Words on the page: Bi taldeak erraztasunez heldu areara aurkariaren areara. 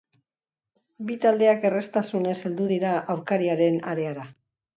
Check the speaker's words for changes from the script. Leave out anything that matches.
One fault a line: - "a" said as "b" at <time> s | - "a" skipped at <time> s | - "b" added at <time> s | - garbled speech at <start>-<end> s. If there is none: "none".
- "areara" said as "dira" at 2.7 s